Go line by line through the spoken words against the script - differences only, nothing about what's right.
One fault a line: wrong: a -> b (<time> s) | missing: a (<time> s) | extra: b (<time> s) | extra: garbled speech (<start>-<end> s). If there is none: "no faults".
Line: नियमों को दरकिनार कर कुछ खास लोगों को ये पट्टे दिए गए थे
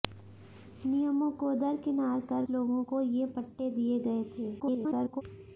missing: कुछ खास (2.5 s)
extra: garbled speech (4.6-5.2 s)